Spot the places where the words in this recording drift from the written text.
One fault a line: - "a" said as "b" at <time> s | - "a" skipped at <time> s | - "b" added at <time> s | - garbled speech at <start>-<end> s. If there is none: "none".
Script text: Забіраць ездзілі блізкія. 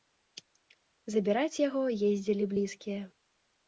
- "яго" added at 1.7 s